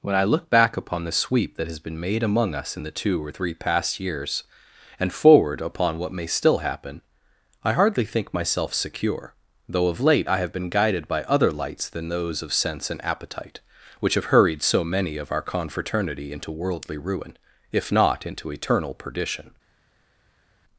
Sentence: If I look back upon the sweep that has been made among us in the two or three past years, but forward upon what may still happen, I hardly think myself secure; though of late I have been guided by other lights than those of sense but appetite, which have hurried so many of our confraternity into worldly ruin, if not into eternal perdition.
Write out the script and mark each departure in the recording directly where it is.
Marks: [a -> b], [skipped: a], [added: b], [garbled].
[If -> When] I look back upon the sweep that has been made among us in the two or three past years, [but -> and] forward upon what may still happen, I hardly think myself secure; though of late I have been guided by other lights than those of sense [but -> and] appetite, which have hurried so many of our confraternity into worldly ruin, if not into eternal perdition.